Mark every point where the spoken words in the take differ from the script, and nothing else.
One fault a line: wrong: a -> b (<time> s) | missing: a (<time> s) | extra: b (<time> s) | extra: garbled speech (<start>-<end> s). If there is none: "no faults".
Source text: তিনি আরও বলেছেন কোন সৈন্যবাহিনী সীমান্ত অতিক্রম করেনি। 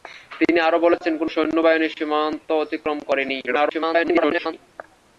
extra: garbled speech (3.5-4.5 s)